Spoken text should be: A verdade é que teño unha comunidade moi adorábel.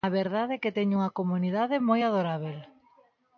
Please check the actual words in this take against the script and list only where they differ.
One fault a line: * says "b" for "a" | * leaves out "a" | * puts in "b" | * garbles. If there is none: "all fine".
all fine